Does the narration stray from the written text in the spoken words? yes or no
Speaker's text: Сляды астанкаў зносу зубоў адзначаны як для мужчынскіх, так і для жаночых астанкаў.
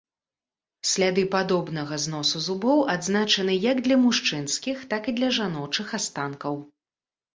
yes